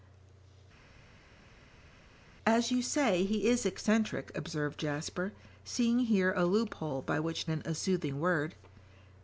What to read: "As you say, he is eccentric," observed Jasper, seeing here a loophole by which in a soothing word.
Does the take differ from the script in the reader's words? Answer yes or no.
no